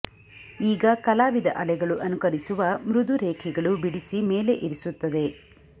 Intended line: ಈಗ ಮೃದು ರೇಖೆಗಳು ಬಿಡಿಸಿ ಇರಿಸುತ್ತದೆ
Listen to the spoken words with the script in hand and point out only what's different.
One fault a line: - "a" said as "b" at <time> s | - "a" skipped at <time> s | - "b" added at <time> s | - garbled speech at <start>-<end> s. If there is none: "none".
- "ಕಲಾವಿದ ಅಲೆಗಳು ಅನುಕರಿಸುವ" added at 1.0 s
- "ಮೇಲೆ" added at 4.3 s